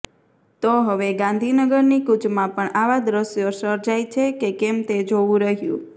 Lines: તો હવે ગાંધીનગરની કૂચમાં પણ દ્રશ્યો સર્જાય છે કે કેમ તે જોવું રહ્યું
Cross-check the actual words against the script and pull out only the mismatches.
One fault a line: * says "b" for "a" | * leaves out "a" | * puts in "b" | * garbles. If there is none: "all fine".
* puts in "આવા"